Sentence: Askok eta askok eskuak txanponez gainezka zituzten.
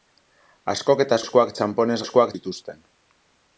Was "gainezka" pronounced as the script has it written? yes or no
no